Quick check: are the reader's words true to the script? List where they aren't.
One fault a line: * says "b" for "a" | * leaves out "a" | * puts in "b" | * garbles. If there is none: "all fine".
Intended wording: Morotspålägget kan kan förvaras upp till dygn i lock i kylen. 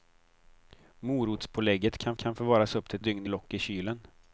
all fine